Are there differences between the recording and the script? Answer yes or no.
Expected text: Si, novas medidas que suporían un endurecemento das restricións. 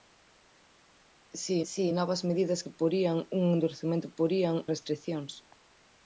yes